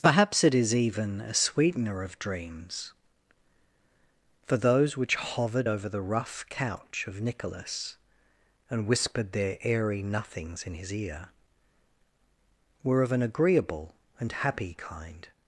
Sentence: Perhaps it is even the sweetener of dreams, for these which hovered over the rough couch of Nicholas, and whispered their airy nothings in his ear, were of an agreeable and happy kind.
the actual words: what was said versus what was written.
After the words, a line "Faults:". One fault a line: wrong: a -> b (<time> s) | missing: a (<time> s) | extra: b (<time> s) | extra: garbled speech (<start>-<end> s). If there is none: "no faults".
Perhaps it is even a sweetener of dreams, for those which hovered over the rough couch of Nicholas, and whispered their airy nothings in his ear, were of an agreeable and happy kind.
Faults:
wrong: the -> a (1.2 s)
wrong: these -> those (4.6 s)